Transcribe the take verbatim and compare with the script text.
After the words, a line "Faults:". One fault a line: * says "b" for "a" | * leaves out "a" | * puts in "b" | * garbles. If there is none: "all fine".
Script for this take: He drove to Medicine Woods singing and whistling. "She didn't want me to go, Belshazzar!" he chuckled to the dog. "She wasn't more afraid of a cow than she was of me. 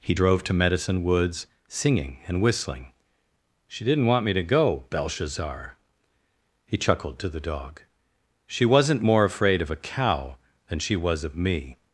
He drove to Medicine Woods singing and whistling. "She didn't want me to go, Belshazzar!" he chuckled to the dog. "She wasn't more afraid of a cow than she was of me.
Faults:
all fine